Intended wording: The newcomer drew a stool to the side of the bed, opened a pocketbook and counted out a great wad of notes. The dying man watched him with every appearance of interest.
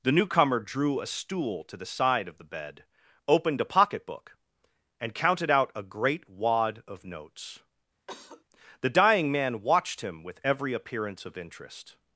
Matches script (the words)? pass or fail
pass